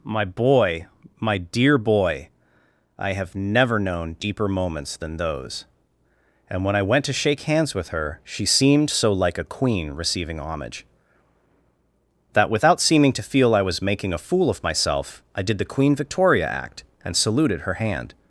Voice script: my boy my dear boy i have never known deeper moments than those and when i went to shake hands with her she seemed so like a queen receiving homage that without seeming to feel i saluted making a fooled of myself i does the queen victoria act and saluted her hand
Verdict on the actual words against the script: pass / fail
fail